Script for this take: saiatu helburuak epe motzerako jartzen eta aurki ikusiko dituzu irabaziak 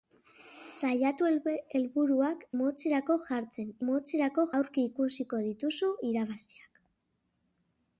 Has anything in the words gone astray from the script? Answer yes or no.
yes